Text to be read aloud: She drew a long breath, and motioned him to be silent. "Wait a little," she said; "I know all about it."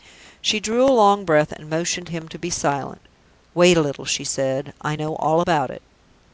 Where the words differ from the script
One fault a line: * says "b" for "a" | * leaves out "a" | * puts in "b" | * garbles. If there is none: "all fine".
all fine